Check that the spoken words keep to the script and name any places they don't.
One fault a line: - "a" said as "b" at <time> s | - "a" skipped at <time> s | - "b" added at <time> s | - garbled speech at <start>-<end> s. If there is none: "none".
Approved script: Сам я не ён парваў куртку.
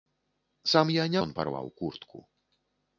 none